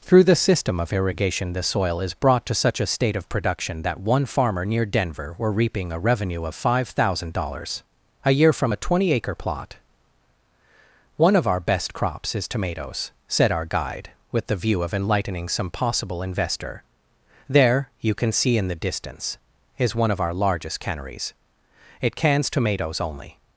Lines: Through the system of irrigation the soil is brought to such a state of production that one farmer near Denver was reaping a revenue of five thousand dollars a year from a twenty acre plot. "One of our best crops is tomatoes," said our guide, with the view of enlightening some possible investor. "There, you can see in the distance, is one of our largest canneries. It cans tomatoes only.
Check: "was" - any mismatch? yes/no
yes